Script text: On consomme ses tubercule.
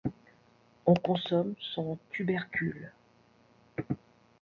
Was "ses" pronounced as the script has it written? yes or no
no